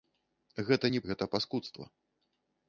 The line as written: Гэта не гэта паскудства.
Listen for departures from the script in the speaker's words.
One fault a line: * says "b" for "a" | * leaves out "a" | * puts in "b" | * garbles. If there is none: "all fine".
all fine